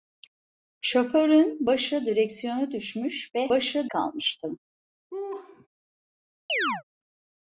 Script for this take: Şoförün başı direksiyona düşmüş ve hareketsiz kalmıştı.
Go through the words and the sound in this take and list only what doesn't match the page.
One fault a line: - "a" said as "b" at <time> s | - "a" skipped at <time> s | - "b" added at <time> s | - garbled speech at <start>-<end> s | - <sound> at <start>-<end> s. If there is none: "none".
- "hareketsiz" said as "başı" at 3.5 s
- laugh at 5.1-5.7 s
- chirp at 6.5-6.8 s